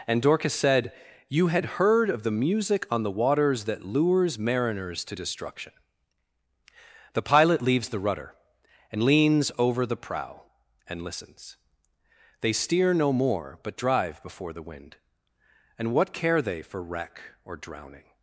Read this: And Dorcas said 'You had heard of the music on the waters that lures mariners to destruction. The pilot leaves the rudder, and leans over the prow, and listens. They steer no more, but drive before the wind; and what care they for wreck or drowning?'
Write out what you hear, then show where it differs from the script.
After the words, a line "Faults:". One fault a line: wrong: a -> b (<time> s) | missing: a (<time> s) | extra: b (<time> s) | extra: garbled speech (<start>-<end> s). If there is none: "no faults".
And Dorcas said 'You had heard of the music on the waters that lures mariners to destruction. The pilot leaves the rudder, and leans over the prow, and listens. They steer no more, but drive before the wind; and what care they for wreck or drowning?'
Faults:
no faults